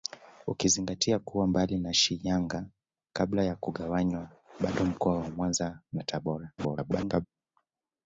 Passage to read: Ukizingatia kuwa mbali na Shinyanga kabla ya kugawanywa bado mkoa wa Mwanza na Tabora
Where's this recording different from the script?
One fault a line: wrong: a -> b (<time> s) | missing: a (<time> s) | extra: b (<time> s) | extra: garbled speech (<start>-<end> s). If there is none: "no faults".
extra: garbled speech (6.6-7.3 s)